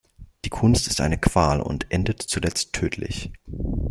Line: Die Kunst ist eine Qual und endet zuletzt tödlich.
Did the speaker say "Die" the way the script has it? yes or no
yes